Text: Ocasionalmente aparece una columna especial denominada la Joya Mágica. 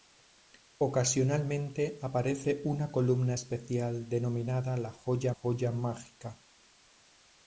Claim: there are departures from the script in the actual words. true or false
true